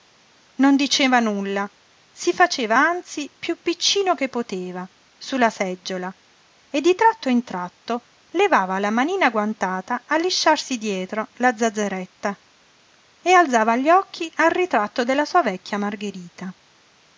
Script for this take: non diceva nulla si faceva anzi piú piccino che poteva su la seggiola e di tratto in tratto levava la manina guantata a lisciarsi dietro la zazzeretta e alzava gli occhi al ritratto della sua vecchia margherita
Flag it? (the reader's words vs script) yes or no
no